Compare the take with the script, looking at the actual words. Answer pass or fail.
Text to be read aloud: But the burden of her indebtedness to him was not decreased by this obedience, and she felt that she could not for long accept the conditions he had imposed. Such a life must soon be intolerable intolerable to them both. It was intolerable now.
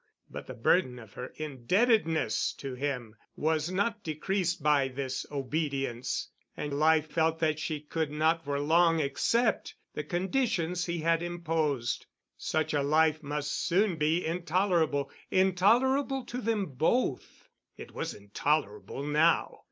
fail